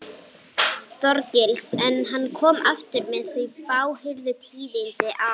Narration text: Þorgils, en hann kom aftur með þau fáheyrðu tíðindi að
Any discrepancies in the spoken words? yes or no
no